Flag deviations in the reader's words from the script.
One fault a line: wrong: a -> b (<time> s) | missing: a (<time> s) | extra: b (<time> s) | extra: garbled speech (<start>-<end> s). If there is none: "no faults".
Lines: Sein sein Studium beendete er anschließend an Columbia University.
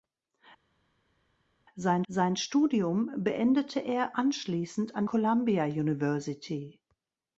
no faults